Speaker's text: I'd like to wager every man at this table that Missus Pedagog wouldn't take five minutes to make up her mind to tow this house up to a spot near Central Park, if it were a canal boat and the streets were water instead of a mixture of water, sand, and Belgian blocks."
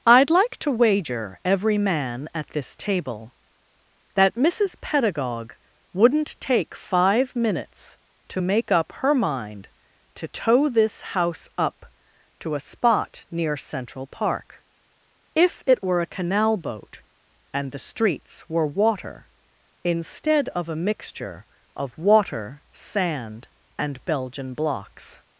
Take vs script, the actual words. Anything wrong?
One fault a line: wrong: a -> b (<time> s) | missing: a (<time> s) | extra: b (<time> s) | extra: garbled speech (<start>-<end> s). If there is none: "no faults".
no faults